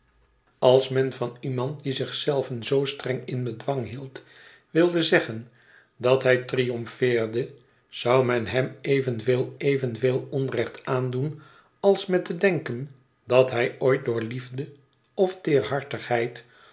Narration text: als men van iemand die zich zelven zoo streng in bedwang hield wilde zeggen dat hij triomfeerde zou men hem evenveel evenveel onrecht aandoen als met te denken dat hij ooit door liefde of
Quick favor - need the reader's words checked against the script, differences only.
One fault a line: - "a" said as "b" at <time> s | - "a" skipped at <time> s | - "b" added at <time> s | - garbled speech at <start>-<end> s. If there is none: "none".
none